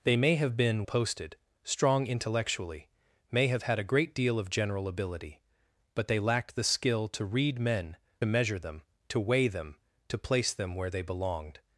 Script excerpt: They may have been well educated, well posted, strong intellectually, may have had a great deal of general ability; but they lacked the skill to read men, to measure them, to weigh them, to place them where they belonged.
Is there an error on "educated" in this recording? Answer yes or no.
yes